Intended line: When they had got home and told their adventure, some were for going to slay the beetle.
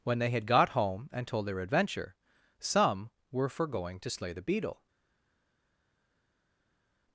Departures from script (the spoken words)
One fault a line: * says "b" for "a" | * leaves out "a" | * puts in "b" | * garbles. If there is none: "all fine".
all fine